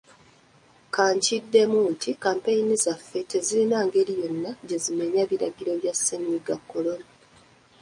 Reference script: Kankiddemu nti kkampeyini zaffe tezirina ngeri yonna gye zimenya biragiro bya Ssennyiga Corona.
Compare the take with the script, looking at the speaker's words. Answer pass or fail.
pass